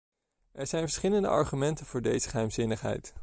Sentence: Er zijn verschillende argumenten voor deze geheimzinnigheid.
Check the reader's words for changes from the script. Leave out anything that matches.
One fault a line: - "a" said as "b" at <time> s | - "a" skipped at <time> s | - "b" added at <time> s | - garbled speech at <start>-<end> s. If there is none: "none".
none